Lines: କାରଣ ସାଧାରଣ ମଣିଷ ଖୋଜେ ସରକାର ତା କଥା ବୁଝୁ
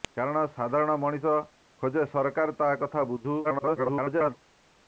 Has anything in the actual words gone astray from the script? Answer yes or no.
yes